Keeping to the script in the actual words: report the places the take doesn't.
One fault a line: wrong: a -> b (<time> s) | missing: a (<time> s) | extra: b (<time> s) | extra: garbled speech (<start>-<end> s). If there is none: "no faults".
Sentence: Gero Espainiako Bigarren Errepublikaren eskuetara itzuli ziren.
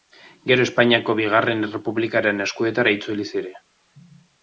no faults